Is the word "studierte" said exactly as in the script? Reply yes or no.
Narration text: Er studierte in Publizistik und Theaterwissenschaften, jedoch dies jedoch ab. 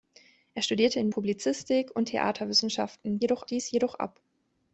yes